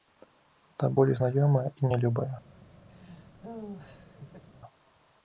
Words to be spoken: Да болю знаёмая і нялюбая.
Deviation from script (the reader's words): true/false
false